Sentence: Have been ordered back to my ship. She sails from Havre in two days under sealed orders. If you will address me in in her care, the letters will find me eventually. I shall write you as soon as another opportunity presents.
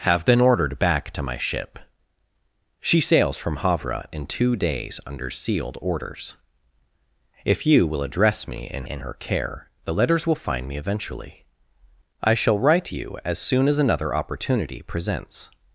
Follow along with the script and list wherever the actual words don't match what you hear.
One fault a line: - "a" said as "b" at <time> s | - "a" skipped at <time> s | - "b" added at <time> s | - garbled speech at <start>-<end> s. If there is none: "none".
none